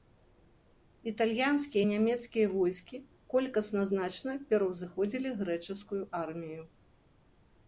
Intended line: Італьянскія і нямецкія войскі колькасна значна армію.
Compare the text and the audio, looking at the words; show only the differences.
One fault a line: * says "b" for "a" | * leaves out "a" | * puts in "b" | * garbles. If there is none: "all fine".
* puts in "пераўзыходзілі грэчаскую"